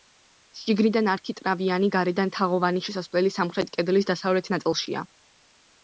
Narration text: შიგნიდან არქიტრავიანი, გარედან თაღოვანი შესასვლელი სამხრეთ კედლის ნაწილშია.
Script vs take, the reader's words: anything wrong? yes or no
yes